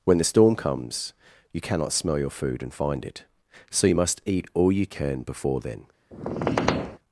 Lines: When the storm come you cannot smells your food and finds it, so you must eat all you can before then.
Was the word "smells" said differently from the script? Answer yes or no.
yes